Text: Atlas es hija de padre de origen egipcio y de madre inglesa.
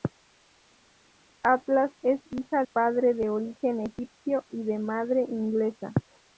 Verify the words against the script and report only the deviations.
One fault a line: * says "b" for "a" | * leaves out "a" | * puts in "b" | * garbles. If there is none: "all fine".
* leaves out "de"